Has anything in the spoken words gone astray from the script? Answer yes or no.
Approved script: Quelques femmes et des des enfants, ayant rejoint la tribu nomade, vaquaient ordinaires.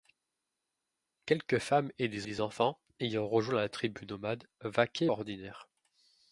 no